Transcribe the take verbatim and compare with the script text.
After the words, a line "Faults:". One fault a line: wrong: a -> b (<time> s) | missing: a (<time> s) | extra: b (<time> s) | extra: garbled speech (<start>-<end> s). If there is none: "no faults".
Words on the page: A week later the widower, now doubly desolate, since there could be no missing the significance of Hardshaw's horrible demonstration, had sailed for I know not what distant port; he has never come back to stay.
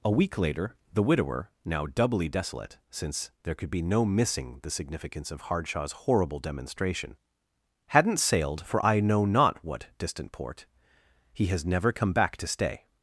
A week later the widower, now doubly desolate, since there could be no missing the significance of Hardshaw's horrible demonstration, hadn't sailed for I know not what distant port; he has never come back to stay.
Faults:
wrong: had -> hadn't (7.9 s)